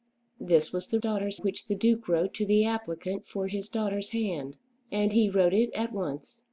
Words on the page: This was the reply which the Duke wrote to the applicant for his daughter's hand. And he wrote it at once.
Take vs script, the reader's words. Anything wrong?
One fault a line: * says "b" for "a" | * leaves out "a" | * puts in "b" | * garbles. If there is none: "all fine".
* says "daughter's" for "reply"